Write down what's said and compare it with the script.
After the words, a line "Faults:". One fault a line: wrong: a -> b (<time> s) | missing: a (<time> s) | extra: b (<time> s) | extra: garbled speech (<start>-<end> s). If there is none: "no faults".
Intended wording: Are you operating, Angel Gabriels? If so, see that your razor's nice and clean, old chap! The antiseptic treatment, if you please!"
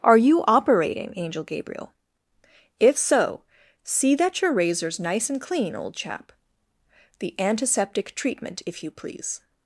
Are you operating, Angel Gabriel? If so, see that your razor's nice and clean, old chap! The antiseptic treatment, if you please!"
Faults:
wrong: Gabriels -> Gabriel (1.4 s)